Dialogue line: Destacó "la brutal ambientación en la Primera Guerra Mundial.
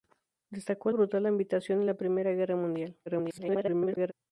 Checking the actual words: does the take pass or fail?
fail